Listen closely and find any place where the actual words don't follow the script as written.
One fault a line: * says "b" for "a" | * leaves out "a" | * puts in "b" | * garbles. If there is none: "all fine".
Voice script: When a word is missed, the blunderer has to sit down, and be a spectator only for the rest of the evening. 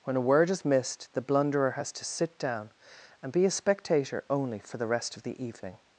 all fine